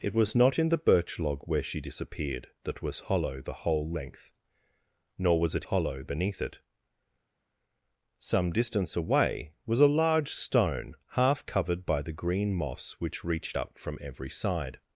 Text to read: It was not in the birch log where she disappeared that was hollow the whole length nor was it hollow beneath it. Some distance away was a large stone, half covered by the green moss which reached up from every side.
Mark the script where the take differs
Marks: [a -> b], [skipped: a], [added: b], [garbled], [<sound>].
It was not in the birch log where she disappeared that was hollow the whole length nor was it hollow beneath it. Some distance away was a large stone, half covered by the green moss which reached up from every side.